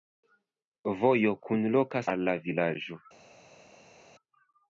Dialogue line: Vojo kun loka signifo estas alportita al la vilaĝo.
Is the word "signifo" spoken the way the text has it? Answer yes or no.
no